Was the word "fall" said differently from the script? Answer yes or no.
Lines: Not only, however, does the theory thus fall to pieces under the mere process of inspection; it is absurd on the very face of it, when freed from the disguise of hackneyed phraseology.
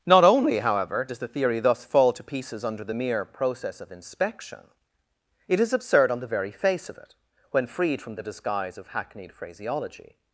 no